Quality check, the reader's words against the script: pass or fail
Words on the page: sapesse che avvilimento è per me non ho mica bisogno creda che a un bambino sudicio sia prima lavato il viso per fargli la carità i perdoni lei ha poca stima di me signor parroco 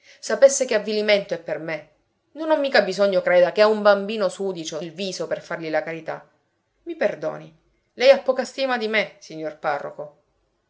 fail